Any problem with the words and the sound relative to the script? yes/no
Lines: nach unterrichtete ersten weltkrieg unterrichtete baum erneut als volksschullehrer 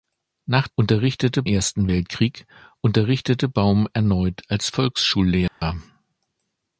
yes